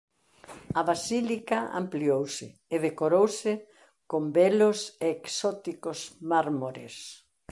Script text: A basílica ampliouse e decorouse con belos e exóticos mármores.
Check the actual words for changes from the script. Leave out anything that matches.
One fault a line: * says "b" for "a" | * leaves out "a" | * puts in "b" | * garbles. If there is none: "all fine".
all fine